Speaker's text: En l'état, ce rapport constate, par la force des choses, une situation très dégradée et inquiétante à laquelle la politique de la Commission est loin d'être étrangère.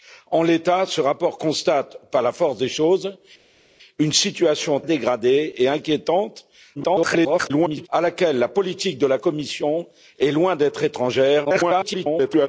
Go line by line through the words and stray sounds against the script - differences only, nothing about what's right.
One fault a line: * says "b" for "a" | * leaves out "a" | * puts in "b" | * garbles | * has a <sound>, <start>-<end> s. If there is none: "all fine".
* leaves out "très"
* garbles
* garbles